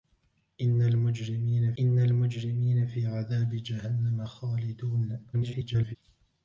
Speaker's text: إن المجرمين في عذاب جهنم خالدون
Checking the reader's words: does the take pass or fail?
fail